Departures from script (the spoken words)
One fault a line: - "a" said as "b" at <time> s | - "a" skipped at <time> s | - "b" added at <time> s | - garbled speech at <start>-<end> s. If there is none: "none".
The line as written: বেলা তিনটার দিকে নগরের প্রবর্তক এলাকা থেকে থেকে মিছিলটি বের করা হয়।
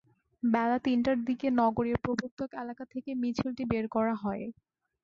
- "থেকে" skipped at 3.1 s